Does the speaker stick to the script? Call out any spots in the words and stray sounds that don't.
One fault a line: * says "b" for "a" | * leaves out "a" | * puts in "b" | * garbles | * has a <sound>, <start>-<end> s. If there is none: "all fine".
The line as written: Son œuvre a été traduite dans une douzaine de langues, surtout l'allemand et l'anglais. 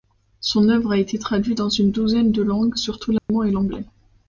* has a dropout, 3.2-3.3 s